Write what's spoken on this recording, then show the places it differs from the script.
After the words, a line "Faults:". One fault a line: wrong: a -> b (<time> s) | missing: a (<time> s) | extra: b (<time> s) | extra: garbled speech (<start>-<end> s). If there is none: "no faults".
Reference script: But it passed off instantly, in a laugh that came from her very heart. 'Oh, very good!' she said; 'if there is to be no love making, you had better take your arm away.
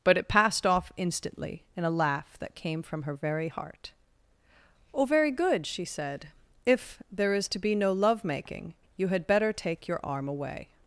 But it passed off instantly, in a laugh that came from her very heart. 'Oh, very good!' she said; 'if there is to be no love making, you had better take your arm away.
Faults:
no faults